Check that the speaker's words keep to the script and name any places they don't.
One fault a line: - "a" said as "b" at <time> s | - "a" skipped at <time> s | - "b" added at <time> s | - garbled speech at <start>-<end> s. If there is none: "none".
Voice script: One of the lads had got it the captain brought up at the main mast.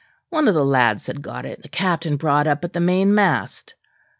none